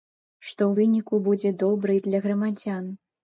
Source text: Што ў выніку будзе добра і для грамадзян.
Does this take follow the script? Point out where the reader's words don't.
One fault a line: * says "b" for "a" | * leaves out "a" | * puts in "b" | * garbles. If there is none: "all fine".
all fine